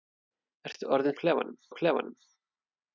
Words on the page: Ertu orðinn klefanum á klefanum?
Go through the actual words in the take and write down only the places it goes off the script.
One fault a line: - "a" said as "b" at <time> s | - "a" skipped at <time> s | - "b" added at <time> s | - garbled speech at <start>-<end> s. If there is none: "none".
none